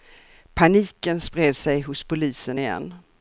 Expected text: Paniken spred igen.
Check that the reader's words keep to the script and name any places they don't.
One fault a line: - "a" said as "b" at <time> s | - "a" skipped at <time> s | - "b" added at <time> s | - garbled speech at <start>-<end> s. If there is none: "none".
- "sig hos polisen" added at 1.5 s